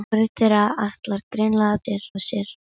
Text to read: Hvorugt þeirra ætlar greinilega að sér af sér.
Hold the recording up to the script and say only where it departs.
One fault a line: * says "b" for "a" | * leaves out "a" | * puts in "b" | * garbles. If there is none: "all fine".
all fine